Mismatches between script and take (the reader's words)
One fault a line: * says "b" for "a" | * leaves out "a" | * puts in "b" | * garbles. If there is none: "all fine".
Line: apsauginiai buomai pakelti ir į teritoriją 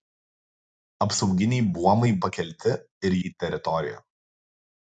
all fine